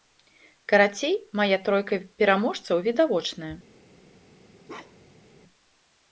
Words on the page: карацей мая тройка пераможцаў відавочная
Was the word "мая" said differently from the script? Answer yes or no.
no